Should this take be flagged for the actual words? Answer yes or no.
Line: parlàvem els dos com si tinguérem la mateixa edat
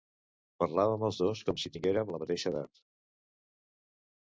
no